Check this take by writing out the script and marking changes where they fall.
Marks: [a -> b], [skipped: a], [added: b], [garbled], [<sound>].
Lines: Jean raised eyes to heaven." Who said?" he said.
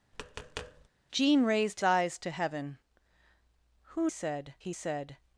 [tap] Jean raised eyes to heaven." Who said?" he said.